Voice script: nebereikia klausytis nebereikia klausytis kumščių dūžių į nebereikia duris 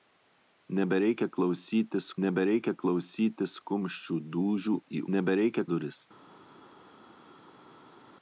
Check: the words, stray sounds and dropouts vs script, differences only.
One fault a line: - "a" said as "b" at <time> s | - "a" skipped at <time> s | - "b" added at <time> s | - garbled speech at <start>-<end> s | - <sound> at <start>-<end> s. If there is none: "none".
none